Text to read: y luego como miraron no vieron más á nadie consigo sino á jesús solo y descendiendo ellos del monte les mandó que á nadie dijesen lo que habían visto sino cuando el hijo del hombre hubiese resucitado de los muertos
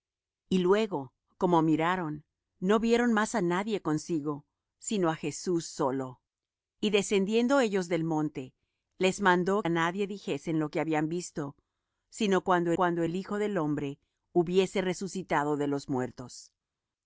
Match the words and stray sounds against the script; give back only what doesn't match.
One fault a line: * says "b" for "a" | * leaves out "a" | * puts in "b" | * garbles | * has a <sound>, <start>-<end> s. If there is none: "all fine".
* leaves out "que"
* puts in "cuando"